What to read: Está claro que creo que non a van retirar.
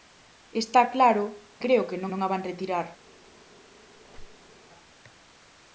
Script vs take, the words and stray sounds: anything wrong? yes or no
yes